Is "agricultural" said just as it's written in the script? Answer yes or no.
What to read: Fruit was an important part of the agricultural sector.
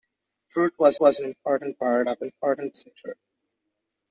no